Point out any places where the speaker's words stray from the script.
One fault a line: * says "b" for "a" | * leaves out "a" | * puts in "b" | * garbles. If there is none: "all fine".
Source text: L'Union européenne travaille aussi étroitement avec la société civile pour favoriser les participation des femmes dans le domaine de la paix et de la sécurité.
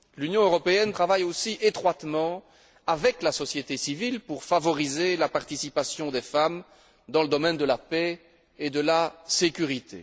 * says "la" for "les"